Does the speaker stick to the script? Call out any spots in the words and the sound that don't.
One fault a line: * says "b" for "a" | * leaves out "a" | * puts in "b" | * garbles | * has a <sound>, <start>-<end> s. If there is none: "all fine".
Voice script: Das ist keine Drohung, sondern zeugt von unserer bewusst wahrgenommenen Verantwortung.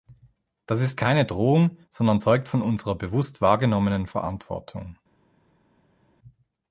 all fine